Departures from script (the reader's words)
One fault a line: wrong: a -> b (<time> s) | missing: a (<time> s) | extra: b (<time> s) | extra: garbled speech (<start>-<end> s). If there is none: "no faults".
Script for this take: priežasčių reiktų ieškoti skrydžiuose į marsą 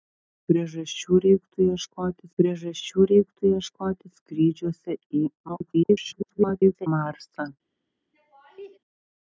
extra: priežasčių reiktų ieškoti (2.4 s)
extra: garbled speech (5.5-6.9 s)